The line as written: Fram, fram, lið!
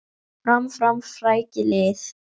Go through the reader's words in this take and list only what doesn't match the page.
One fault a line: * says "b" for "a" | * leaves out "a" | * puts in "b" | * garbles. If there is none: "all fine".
* puts in "frækið"